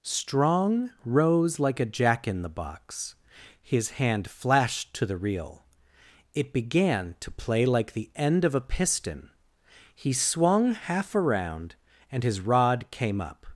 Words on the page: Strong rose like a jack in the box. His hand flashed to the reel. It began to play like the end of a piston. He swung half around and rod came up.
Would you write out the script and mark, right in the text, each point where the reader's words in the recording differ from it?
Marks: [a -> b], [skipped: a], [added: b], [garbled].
Strong rose like a jack in the box. His hand flashed to the reel. It began to play like the end of a piston. He swung half around and [added: his] rod came up.